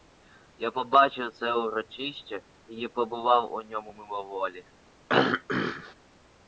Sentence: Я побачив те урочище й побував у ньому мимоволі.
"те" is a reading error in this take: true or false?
true